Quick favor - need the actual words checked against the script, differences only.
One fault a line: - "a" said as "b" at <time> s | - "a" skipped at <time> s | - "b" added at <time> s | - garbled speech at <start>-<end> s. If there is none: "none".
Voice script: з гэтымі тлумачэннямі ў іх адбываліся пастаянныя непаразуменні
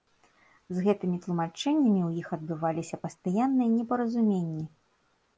none